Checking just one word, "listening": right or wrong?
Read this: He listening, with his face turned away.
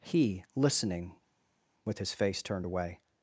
right